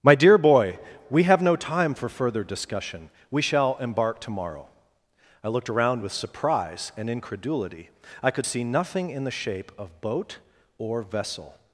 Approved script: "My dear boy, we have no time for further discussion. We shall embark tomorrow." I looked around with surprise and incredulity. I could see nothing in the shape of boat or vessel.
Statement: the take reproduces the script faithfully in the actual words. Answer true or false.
true